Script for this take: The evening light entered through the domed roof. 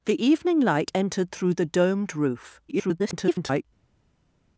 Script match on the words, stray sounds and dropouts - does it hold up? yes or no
no